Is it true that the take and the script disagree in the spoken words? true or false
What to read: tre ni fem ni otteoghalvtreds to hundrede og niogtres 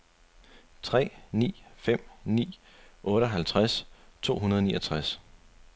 false